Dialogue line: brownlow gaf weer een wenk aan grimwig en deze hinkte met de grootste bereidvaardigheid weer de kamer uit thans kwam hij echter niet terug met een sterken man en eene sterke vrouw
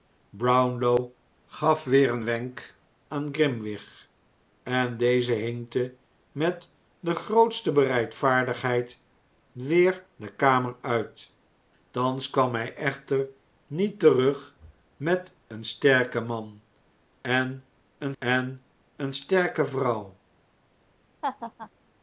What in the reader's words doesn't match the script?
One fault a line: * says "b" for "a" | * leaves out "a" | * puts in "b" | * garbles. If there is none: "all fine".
* puts in "en eene"